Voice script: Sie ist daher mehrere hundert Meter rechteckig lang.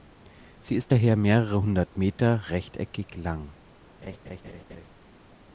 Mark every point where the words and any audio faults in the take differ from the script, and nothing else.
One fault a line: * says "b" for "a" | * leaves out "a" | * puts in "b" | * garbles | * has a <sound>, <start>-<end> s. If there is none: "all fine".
* has a laugh, 4.0-4.9 s